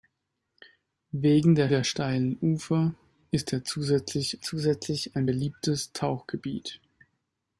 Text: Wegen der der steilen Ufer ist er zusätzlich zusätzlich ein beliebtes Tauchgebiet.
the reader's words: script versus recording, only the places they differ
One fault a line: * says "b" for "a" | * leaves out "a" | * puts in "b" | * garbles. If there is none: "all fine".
all fine